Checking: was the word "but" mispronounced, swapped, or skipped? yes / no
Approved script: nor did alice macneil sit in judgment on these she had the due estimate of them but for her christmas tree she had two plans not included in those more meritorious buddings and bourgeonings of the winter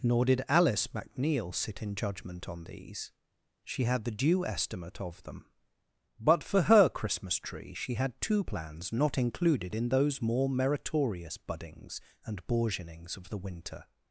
no